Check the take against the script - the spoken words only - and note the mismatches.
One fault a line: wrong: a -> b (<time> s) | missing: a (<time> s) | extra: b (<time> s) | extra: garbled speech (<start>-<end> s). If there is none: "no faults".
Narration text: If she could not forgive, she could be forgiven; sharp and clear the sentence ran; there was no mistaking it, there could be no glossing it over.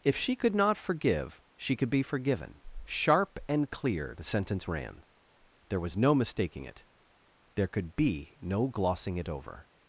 no faults